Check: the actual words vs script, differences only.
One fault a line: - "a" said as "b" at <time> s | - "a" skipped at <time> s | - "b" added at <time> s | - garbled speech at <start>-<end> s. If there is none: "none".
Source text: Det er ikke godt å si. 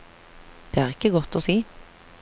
none